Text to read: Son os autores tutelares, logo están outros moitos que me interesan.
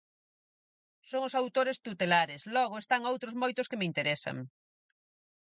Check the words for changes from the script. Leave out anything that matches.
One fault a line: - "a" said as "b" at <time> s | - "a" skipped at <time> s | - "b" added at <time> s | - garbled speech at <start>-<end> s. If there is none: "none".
none